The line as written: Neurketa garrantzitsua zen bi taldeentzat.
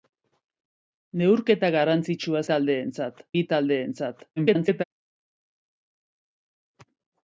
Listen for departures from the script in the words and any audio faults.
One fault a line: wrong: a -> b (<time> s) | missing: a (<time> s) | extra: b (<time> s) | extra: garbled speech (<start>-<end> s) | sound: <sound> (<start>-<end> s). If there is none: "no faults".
wrong: zen -> taldeentzat (2.5 s)
extra: garbled speech (4.4-4.8 s)